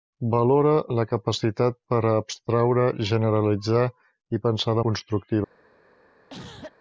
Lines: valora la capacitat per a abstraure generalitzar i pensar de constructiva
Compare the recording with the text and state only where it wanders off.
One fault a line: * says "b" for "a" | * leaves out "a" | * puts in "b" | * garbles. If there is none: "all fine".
all fine